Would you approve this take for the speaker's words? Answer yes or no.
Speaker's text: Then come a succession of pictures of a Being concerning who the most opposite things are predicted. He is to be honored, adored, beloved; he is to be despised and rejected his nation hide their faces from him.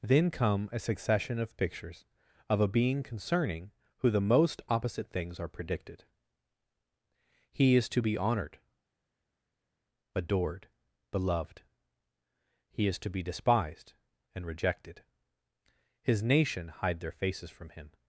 yes